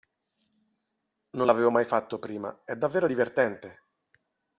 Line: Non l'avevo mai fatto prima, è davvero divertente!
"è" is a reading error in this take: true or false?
false